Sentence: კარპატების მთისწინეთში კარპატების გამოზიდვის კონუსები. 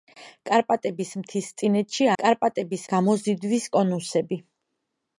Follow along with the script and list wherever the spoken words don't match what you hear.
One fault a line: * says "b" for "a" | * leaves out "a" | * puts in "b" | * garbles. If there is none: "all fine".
all fine